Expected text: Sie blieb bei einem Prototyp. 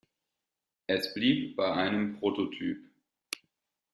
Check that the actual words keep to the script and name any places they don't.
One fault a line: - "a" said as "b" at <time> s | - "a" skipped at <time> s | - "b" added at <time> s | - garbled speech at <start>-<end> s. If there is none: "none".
- "Sie" said as "Es" at 0.9 s